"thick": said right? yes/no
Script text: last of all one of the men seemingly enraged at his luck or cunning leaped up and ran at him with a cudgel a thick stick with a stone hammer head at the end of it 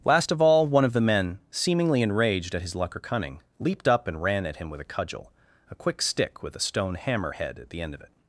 no